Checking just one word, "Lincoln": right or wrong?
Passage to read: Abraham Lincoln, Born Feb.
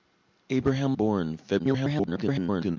wrong